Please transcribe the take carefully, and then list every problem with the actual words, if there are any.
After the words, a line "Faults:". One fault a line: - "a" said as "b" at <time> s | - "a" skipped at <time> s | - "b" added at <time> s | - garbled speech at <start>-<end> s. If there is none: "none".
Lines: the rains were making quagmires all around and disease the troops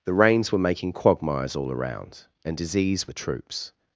the rains were making quagmires all around and disease the troops
Faults:
none